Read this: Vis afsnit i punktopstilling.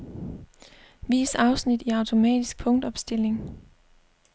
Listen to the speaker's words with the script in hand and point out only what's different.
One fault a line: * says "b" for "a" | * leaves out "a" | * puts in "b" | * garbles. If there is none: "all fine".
* puts in "automatisk"